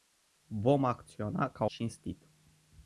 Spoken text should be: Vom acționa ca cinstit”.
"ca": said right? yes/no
yes